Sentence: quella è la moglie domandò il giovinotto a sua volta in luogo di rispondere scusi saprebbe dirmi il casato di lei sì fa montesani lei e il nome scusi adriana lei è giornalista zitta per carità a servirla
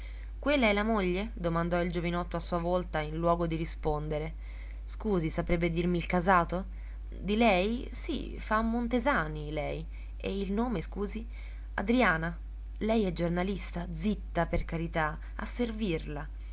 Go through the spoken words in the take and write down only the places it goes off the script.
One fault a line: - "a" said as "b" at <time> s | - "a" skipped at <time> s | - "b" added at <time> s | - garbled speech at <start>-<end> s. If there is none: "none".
none